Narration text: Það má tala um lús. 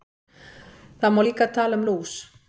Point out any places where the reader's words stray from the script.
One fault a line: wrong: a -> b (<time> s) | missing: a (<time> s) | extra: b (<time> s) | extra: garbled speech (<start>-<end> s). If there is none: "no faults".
extra: líka (1.2 s)